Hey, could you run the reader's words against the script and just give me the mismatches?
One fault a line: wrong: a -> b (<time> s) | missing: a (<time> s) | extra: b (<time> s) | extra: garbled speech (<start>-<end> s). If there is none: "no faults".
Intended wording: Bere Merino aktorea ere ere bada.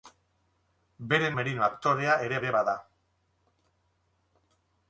no faults